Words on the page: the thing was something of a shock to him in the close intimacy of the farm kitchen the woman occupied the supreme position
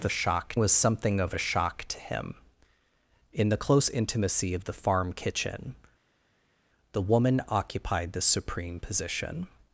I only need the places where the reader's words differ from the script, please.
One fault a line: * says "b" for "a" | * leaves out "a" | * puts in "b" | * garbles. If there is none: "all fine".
* says "shock" for "thing"